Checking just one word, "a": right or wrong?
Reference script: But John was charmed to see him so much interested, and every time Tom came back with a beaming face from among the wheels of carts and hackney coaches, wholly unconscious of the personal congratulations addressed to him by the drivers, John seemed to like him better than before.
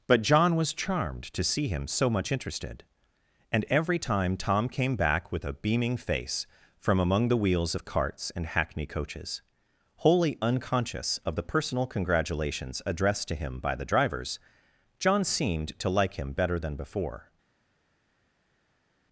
right